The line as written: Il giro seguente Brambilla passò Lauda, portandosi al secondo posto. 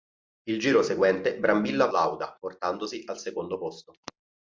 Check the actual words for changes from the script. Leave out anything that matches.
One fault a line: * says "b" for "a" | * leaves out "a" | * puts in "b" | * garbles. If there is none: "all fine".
* leaves out "passò"